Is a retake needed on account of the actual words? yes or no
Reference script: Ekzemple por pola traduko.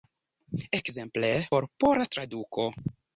no